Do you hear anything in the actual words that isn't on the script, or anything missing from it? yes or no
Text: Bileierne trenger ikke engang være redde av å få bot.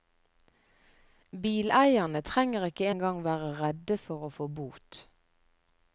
yes